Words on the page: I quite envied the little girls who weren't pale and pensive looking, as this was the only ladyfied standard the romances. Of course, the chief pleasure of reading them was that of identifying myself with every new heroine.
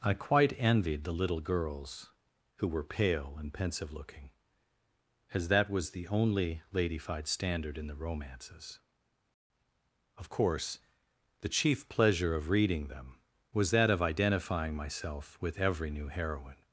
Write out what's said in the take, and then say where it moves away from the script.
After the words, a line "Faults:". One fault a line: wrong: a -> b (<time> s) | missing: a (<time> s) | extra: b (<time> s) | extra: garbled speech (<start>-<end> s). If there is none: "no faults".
I quite envied the little girls who were pale and pensive looking, as that was the only ladyfied standard in the romances. Of course, the chief pleasure of reading them was that of identifying myself with every new heroine.
Faults:
wrong: weren't -> were (2.7 s)
wrong: this -> that (5.5 s)
extra: in (7.8 s)